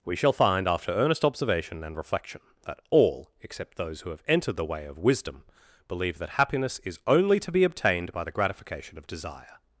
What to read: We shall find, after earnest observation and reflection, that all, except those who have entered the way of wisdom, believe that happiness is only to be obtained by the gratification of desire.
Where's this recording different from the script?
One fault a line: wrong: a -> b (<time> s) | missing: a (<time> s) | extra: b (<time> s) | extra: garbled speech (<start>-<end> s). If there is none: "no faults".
no faults